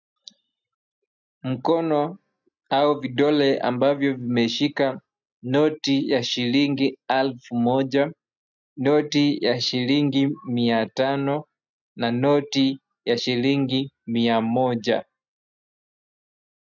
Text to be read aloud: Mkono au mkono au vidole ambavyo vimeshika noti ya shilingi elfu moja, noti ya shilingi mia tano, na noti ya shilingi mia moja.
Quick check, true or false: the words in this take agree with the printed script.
false